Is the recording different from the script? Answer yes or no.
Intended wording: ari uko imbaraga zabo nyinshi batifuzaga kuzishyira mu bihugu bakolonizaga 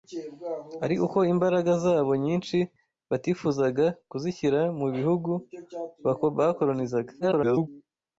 yes